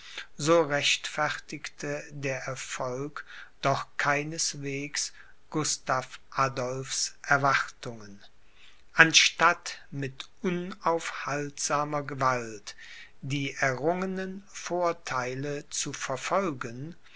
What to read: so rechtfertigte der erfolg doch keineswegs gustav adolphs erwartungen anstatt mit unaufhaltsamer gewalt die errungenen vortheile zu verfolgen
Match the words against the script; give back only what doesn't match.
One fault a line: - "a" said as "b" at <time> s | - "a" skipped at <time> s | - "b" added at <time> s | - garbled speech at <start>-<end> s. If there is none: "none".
none